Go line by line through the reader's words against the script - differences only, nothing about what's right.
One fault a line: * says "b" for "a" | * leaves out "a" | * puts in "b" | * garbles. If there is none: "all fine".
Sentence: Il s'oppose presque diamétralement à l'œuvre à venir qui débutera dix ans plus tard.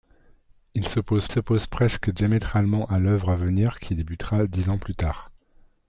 * puts in "s'oppose"